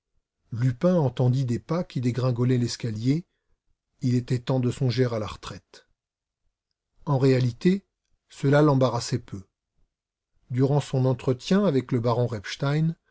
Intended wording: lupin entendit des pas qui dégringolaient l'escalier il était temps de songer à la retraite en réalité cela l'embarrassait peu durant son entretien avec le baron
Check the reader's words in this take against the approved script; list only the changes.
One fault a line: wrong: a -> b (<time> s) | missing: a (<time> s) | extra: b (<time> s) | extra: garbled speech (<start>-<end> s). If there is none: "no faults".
no faults